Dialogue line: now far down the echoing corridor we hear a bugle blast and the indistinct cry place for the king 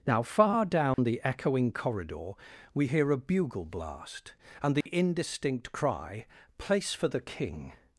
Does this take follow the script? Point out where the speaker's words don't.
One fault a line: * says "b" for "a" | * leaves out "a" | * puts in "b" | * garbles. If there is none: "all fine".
all fine